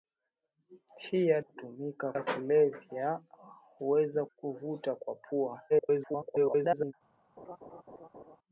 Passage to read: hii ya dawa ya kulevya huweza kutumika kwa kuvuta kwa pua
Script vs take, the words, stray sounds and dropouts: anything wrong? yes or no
yes